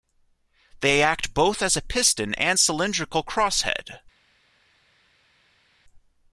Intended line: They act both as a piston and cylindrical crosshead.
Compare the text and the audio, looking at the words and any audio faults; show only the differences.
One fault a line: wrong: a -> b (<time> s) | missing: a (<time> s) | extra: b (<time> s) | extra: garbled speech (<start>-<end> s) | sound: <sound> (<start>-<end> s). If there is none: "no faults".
no faults